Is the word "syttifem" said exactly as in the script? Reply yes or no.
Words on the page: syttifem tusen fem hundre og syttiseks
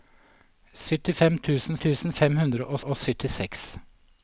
yes